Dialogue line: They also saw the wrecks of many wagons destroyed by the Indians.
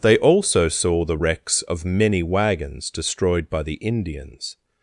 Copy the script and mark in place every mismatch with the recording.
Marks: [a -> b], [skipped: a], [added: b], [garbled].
They also saw the wrecks of many wagons destroyed by the Indians.